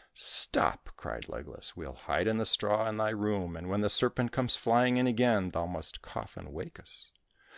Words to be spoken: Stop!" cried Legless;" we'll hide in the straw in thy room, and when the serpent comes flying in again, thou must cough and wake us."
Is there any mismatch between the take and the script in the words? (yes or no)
no